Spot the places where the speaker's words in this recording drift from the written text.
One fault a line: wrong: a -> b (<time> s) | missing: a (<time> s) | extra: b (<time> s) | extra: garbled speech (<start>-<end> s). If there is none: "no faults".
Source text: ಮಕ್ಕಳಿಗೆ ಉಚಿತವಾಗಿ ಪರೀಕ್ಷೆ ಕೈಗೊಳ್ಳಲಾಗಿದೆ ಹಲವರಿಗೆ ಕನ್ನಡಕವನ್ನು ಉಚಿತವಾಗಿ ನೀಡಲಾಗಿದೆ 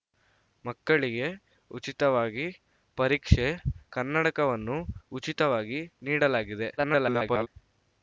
missing: ಕೈಗೊಳ್ಳಲಾಗಿದೆ ಹಲವರಿಗೆ (3.5 s)
extra: garbled speech (6.8-7.5 s)